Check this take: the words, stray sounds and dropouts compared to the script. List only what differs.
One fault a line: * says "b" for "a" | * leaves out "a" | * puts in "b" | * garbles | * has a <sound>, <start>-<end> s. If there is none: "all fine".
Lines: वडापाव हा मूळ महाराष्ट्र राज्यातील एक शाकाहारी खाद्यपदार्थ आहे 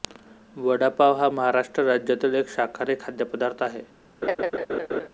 * leaves out "मूळ"
* has a laugh, 4.2-5.1 s